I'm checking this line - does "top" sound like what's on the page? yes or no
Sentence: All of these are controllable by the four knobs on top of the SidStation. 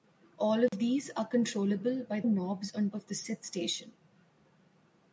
no